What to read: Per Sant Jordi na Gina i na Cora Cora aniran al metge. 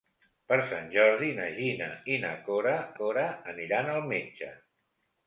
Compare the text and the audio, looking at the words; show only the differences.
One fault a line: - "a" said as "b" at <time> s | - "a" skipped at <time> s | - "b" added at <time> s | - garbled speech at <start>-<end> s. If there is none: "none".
none